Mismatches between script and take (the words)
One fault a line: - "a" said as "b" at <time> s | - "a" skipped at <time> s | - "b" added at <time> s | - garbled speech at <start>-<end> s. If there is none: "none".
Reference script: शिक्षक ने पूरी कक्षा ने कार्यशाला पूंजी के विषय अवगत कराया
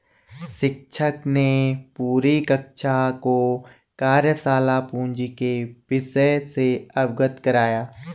- "ने" said as "को" at 3.2 s
- "से" added at 6.5 s